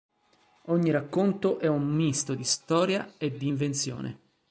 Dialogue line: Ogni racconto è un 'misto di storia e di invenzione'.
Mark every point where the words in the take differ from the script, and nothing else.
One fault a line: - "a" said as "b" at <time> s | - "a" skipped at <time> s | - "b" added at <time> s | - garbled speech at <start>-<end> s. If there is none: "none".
none